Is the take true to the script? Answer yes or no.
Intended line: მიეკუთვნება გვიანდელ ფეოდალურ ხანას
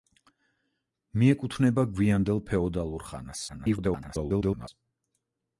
no